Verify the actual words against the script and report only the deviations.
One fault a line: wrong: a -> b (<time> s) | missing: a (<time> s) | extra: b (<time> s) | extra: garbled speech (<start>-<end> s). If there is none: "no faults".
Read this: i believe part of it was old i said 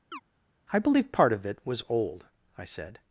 no faults